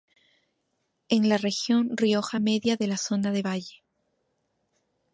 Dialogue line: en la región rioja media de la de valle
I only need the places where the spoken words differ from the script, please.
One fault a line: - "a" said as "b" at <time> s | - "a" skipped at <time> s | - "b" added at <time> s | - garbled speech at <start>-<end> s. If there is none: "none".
- "zona" added at 2.9 s